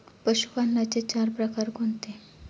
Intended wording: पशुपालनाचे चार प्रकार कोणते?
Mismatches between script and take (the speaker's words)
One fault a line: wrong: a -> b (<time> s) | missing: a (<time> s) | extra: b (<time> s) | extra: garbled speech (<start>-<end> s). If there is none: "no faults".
no faults